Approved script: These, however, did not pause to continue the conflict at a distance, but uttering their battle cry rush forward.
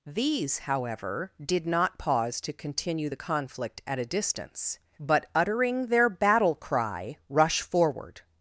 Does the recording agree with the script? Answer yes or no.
yes